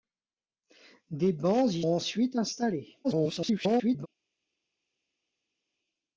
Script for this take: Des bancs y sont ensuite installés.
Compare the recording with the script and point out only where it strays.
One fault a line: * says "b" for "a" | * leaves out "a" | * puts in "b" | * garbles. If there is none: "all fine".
* leaves out "sont"
* garbles